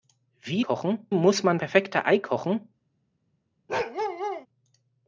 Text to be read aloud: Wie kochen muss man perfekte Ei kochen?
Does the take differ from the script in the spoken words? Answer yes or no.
no